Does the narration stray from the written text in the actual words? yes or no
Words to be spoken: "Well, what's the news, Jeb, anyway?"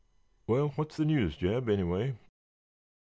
no